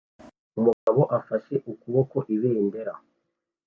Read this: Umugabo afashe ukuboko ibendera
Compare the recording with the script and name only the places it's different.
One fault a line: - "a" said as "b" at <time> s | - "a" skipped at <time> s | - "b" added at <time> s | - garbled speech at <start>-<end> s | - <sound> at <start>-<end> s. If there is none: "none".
- dropout at 0.7-0.9 s